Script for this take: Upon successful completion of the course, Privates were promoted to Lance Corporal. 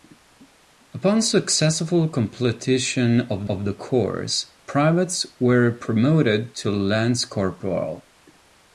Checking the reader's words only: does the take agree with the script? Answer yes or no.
no